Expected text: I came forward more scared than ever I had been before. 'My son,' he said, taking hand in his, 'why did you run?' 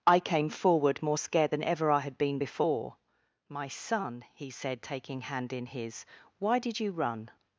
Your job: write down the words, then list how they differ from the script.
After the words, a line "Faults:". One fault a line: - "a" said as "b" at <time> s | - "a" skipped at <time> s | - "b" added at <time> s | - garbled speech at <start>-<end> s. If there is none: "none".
I came forward more scared than ever I had been before. 'My son,' he said, taking hand in his, 'why did you run?'
Faults:
none